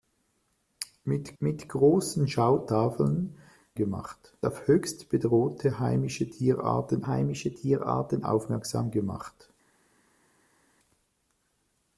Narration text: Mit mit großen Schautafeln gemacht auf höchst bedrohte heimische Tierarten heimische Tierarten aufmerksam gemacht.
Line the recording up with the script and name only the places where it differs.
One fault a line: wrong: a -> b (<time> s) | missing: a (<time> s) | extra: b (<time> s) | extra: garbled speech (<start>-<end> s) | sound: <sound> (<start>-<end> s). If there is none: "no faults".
no faults